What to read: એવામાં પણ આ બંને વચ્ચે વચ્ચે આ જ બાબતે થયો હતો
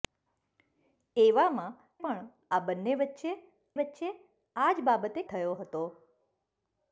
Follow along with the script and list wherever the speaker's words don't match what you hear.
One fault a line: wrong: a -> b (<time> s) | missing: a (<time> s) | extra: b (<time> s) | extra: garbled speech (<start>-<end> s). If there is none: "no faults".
no faults